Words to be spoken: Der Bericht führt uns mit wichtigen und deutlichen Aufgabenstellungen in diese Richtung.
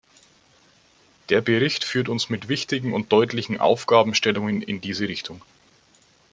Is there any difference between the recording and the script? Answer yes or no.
no